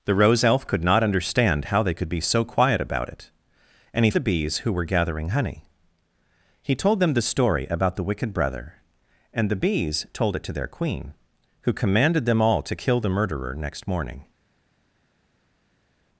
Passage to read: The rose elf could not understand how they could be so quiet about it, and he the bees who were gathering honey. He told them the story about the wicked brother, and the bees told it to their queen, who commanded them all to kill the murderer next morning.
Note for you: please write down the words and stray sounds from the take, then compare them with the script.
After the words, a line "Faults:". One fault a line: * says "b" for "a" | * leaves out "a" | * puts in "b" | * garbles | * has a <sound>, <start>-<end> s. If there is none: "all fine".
The rose elf could not understand how they could be so quiet about it, and he the bees who were gathering honey. He told them the story about the wicked brother, and the bees told it to their queen, who commanded them all to kill the murderer next morning.
Faults:
all fine